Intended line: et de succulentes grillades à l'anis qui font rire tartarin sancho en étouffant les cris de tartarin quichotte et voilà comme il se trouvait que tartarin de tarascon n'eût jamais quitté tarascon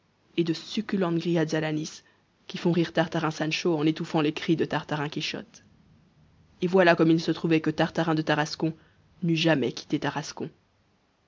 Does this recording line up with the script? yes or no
yes